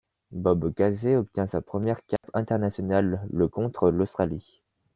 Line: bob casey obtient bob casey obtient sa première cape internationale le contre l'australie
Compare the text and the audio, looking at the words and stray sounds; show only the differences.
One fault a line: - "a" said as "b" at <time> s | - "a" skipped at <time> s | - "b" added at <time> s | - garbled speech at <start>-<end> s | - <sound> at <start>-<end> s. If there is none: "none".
- "bob casey obtient" skipped at 1.4 s
- dropout at 2.2-2.2 s